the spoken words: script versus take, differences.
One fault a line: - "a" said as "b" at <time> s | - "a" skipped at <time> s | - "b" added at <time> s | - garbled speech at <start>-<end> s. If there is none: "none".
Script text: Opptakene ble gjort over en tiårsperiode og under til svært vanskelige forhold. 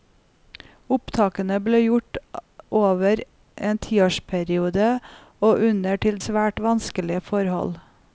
none